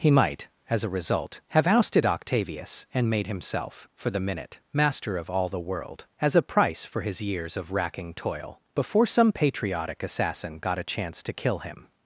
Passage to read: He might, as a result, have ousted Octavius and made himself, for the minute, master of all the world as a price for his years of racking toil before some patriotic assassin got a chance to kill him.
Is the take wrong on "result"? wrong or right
right